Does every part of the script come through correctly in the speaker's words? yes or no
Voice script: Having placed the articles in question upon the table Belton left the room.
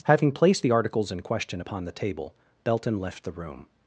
yes